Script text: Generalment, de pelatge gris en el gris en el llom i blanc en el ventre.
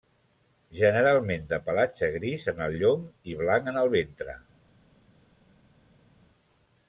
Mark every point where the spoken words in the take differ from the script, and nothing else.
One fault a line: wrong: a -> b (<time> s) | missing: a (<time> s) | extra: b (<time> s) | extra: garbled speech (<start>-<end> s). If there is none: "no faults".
missing: gris en el (2.8 s)